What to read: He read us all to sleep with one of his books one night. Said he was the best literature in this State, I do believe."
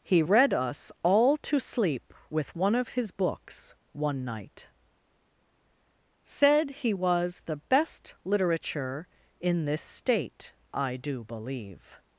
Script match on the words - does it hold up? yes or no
yes